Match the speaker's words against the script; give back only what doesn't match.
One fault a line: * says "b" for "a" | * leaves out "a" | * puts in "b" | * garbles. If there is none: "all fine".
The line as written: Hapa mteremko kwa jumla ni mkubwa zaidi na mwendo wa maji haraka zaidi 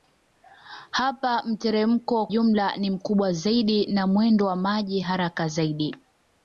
* leaves out "kwa"